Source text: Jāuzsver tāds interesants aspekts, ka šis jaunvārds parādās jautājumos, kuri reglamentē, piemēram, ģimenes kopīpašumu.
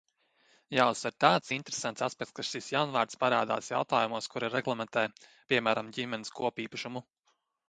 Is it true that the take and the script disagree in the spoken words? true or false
false